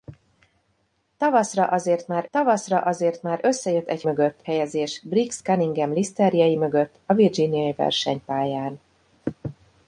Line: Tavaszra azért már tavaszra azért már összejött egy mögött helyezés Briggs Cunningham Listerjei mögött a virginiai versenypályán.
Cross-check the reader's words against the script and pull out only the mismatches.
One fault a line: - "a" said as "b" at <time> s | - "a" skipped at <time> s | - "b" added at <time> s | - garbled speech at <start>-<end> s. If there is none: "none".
none